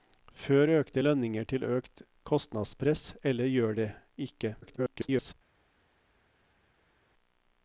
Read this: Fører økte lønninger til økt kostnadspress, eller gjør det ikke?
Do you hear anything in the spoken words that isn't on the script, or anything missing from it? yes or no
yes